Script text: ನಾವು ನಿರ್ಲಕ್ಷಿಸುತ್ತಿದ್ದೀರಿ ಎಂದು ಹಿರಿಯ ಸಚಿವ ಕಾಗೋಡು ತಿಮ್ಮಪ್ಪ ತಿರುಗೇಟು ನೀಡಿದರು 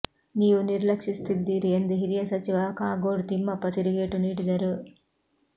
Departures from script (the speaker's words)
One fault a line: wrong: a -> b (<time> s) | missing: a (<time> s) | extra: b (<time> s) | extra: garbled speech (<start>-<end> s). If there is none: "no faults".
wrong: ನಾವು -> ನೀವು (0.3 s)